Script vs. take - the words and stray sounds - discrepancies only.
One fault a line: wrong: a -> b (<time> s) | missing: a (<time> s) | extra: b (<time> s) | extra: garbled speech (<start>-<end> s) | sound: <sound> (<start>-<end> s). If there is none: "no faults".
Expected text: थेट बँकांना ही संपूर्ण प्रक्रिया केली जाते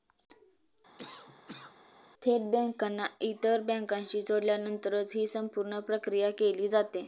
sound: cough (1.0-1.8 s)
extra: इतर बँकांशी जोडल्यानंतरच (3.2 s)